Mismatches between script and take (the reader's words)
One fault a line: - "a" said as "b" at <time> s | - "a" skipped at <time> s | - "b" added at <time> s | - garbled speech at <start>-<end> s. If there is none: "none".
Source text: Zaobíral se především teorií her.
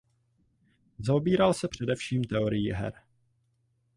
none